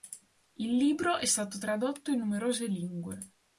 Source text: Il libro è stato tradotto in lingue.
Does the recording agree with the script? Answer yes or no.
no